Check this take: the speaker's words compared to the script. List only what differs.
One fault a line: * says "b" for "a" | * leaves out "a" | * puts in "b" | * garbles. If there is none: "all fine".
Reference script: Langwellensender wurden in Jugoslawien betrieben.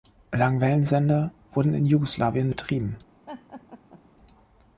all fine